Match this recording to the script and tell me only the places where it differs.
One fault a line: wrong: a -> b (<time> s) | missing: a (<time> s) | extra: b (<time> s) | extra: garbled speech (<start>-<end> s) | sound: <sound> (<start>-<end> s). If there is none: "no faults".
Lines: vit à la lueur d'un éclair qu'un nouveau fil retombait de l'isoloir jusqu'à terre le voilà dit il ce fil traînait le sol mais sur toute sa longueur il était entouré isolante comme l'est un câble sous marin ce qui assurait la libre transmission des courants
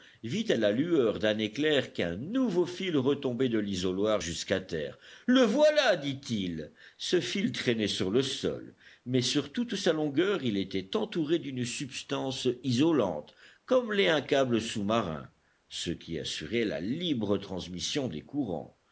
extra: sur (7.9 s)
extra: d'une substance (11.4 s)